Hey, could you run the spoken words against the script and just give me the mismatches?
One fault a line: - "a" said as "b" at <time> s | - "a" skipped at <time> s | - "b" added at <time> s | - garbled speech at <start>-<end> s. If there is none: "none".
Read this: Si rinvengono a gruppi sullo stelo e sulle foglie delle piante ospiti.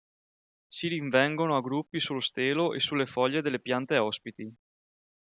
none